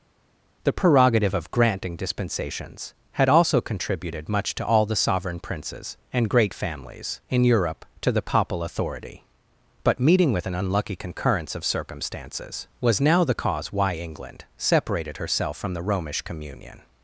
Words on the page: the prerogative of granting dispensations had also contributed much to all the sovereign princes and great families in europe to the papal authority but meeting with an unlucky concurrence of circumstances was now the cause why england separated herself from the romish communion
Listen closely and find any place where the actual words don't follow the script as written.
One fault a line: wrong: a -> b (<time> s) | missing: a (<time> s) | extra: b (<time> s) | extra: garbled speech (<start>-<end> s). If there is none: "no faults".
no faults